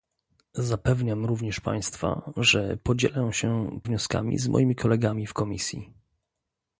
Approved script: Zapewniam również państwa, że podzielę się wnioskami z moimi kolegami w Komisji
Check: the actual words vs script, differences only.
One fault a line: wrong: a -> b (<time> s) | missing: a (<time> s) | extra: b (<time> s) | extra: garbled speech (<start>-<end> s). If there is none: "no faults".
no faults